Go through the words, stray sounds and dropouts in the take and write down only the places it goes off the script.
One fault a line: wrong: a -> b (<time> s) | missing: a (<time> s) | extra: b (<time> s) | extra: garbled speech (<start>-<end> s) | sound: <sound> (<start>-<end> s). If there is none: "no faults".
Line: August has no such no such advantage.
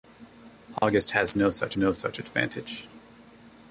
sound: dropout (0.8-0.8 s)